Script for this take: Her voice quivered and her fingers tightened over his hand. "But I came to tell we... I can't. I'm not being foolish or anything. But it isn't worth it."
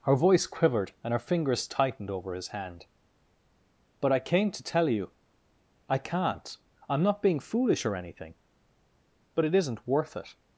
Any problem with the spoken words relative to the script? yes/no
yes